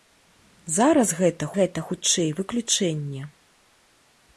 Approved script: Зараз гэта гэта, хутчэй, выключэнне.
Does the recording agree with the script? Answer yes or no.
yes